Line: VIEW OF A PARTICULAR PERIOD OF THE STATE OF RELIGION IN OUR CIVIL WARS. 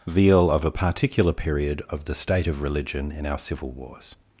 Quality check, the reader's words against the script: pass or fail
fail